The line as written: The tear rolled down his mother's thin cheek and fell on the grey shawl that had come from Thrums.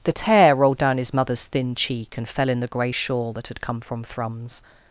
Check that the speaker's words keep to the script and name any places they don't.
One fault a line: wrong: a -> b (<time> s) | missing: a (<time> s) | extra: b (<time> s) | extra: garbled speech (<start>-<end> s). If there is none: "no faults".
wrong: on -> in (2.5 s)